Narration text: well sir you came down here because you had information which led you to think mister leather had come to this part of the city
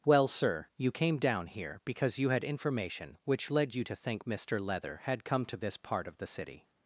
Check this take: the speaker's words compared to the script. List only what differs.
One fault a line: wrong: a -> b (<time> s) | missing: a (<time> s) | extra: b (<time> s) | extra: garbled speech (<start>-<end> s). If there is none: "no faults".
no faults